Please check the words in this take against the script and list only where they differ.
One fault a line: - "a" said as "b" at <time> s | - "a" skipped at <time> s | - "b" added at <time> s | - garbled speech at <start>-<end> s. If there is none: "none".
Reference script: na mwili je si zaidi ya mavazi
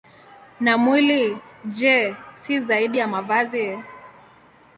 none